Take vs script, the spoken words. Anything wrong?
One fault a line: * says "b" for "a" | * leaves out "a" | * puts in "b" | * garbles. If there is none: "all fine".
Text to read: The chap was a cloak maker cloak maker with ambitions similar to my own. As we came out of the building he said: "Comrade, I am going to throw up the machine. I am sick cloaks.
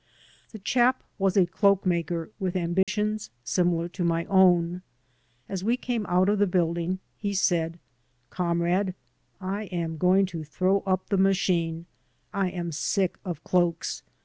* leaves out "cloak maker"
* puts in "of"